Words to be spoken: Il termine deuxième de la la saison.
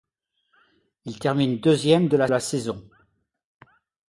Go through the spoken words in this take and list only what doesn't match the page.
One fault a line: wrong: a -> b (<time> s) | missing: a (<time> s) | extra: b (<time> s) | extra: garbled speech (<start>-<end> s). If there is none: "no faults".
no faults